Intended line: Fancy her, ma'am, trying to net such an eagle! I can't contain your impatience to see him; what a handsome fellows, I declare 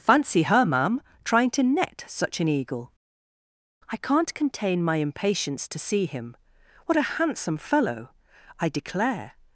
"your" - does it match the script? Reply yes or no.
no